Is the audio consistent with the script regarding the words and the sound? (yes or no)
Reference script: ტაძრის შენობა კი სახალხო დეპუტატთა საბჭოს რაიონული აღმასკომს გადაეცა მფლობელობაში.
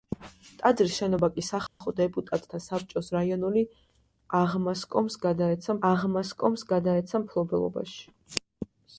no